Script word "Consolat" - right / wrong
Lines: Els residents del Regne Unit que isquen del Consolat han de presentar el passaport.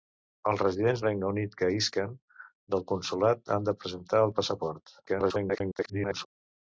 right